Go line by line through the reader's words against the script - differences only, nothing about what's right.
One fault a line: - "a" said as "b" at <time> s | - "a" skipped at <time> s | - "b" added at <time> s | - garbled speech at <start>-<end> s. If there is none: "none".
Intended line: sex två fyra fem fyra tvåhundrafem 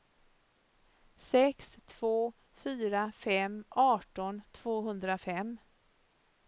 - "fyra" said as "arton" at 3.7 s